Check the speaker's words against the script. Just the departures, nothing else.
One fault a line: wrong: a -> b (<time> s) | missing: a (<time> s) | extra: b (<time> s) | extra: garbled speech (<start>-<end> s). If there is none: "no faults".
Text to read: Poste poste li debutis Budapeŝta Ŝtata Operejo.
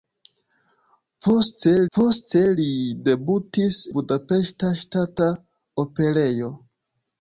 no faults